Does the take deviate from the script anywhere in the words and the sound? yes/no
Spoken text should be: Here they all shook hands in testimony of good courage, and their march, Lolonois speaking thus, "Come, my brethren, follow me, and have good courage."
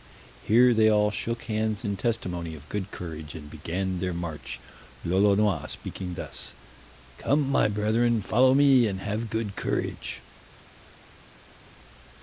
yes